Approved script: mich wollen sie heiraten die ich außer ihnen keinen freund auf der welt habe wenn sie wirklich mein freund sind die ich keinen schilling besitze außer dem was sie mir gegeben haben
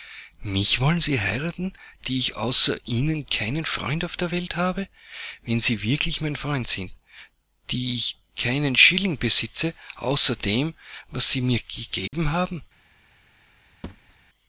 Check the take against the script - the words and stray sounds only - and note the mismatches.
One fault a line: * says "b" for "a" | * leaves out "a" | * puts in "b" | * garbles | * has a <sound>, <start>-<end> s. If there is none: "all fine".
* has a dropout, 12.1-12.1 s
* has a thud, 13.8-14.2 s